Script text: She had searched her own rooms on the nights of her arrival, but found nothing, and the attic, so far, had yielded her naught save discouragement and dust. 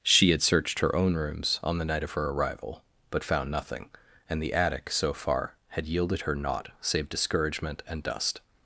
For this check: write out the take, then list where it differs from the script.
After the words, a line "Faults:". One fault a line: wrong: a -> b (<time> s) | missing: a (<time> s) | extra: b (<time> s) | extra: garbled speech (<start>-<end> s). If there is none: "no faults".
She had searched her own rooms on the night of her arrival, but found nothing, and the attic, so far, had yielded her naught save discouragement and dust.
Faults:
wrong: nights -> night (1.9 s)